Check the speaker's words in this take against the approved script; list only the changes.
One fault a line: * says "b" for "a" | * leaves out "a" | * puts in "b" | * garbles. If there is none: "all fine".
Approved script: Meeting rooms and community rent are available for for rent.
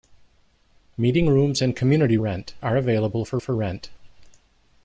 all fine